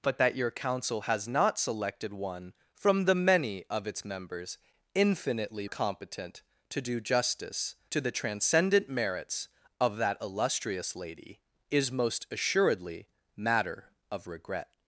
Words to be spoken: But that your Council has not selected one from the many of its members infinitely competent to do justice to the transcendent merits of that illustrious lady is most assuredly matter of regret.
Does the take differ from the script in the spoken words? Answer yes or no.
no